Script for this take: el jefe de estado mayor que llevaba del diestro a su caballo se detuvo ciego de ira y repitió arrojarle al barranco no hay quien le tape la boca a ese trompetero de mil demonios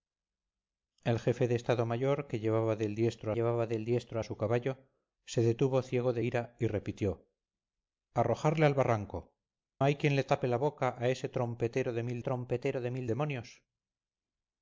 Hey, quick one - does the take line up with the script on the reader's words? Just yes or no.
no